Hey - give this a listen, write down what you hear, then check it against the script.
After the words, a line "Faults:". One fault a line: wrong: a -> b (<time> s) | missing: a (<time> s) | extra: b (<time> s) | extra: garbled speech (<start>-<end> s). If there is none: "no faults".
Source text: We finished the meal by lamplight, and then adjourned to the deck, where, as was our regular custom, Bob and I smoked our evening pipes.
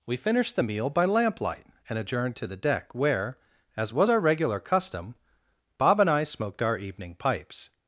We finished the meal by lamplight, and adjourned to the deck, where, as was our regular custom, Bob and I smoked our evening pipes.
Faults:
missing: then (2.0 s)